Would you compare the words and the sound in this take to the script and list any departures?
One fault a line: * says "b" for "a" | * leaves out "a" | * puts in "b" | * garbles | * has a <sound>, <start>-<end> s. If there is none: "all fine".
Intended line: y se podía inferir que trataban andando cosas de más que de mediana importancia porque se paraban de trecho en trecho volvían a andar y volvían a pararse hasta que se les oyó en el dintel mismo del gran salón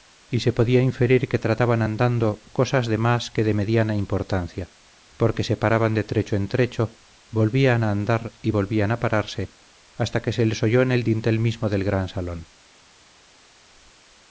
all fine